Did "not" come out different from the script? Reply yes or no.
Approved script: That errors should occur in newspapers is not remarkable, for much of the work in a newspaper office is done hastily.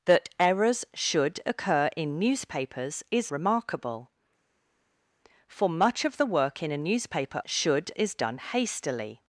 yes